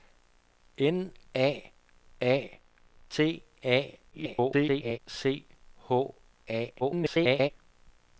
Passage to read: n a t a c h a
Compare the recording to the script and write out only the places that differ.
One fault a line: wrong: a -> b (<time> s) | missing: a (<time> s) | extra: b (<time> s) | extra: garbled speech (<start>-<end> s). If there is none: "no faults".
extra: a (2.2 s)
extra: garbled speech (4.1-5.0 s)
extra: garbled speech (6.8-7.5 s)